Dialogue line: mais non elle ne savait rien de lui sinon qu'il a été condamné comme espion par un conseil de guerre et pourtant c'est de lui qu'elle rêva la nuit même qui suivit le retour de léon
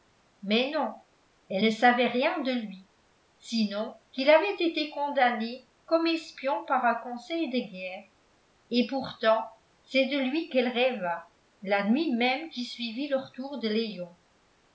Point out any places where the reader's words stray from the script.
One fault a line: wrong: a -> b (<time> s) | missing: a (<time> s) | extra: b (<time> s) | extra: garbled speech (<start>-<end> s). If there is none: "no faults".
wrong: a -> avait (4.3 s)